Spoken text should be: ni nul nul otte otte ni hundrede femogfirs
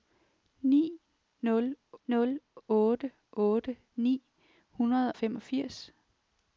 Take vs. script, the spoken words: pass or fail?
pass